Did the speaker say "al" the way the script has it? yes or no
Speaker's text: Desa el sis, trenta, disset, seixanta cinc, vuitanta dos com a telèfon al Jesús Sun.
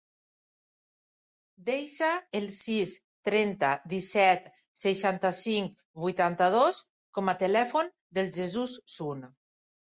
no